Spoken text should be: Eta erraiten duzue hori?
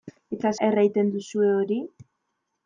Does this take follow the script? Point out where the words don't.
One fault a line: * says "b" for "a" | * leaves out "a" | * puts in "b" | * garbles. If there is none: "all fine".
all fine